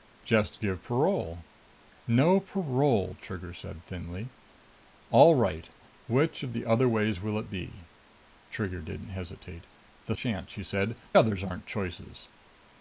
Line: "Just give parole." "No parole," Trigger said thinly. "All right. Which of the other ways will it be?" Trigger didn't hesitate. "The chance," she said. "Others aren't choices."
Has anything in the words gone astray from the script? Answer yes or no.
no